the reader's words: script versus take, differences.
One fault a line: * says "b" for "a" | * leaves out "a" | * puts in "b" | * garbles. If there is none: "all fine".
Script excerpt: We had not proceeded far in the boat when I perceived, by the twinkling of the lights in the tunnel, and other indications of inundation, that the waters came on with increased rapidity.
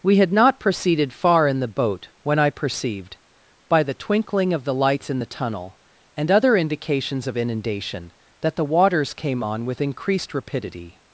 all fine